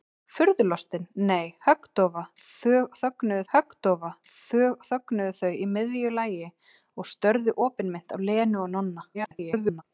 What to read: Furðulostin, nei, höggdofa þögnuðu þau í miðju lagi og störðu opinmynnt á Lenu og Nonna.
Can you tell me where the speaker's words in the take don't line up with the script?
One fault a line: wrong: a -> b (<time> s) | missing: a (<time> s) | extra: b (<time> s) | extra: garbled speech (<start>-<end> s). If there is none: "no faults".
extra: höggdofa þögnuðu (3.5 s)
extra: garbled speech (9.1-9.8 s)